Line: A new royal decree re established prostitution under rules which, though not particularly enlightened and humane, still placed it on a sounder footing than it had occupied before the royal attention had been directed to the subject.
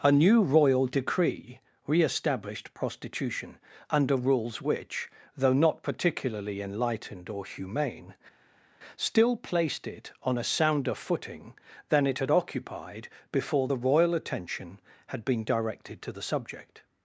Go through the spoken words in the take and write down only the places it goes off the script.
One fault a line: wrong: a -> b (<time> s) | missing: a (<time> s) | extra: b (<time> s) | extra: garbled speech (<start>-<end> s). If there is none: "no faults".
wrong: and -> or (7.3 s)